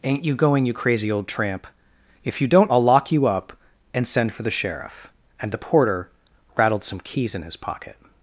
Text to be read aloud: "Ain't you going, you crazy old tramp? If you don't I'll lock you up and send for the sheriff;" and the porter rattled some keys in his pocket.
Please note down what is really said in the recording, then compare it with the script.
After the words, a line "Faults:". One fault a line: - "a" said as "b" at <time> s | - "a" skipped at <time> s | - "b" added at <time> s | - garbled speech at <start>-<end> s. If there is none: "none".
"Ain't you going, you crazy old tramp? If you don't I'll lock you up and send for the sheriff;" and the porter rattled some keys in his pocket.
Faults:
none